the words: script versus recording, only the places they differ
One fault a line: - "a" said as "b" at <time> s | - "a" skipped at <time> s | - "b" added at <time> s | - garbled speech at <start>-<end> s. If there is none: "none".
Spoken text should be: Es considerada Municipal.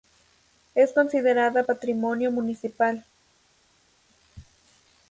- "Patrimonio" added at 1.6 s